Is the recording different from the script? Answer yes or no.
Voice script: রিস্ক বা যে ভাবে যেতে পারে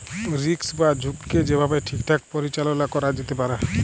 yes